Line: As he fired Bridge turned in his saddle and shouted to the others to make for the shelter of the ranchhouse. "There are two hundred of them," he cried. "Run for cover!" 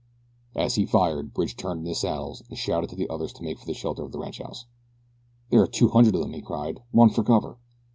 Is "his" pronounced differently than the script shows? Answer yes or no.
no